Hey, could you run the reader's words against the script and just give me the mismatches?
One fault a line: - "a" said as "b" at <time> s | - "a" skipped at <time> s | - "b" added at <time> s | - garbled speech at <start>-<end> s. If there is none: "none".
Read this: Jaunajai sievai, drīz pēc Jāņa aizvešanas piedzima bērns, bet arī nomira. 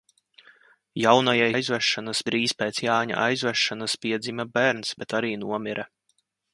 - "sievai" said as "aizvešanas" at 1.5 s